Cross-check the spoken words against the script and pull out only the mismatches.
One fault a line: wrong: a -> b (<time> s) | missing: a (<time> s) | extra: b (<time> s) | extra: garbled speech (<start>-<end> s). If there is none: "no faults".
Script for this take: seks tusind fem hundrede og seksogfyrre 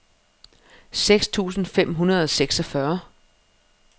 no faults